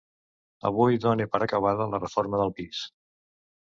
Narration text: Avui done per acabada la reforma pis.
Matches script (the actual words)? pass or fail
fail